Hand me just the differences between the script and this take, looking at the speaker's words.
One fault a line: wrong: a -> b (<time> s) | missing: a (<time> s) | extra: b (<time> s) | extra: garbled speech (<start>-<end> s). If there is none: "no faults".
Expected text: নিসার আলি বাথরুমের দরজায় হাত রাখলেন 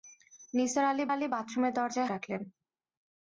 extra: আলি (1.1 s)
missing: হাত (2.1 s)